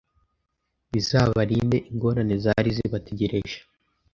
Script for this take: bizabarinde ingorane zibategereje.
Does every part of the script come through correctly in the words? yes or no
no